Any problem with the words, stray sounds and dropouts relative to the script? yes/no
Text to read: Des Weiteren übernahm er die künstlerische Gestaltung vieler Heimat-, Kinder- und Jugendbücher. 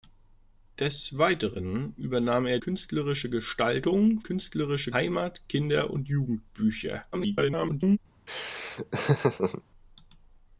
yes